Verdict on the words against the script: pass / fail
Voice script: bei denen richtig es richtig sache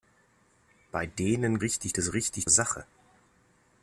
pass